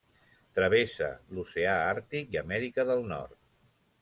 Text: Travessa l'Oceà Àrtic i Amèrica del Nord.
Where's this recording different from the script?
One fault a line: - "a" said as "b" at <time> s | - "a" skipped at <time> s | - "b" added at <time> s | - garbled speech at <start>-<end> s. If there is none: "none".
none